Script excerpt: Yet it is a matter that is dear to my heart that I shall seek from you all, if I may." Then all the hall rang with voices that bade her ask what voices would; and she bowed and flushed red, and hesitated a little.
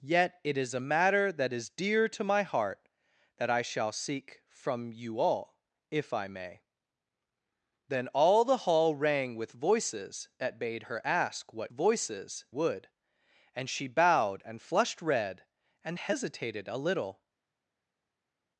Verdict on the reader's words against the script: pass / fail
pass